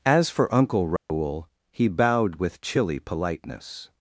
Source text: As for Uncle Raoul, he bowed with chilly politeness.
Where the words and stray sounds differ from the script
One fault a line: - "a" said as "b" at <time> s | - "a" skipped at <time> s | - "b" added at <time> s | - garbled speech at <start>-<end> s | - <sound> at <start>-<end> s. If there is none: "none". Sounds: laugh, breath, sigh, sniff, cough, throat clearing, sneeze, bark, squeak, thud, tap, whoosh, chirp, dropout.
- dropout at 1.0-1.1 s